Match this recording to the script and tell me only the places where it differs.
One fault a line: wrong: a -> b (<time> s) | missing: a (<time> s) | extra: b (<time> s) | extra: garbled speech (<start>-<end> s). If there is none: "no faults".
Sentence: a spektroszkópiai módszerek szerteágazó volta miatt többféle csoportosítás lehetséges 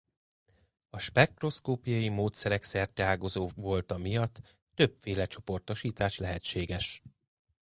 no faults